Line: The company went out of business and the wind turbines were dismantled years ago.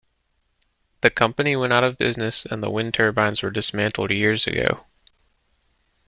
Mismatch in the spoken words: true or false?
false